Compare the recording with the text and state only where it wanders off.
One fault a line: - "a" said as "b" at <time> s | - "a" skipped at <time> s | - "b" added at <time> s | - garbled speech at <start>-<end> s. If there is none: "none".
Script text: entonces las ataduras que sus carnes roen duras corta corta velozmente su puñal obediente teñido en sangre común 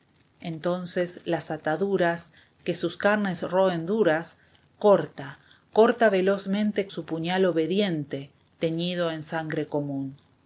none